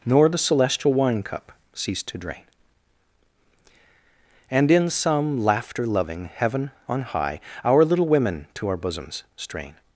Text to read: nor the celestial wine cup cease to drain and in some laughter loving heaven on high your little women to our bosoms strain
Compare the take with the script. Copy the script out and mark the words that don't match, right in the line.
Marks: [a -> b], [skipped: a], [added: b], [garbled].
nor the celestial wine cup cease to drain and in some laughter loving heaven on high [your -> our] little women to our bosoms strain